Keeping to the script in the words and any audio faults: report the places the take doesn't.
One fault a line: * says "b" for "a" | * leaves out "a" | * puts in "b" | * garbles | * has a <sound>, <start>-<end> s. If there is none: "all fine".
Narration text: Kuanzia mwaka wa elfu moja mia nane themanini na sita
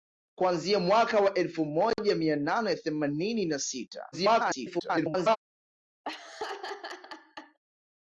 * garbles
* has a laugh, 6.0-7.6 s